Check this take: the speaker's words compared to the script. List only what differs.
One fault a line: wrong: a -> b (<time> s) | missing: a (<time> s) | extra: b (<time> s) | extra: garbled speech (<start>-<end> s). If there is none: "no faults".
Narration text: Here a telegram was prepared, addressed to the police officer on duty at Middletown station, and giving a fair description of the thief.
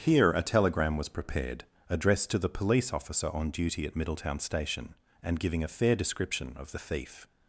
no faults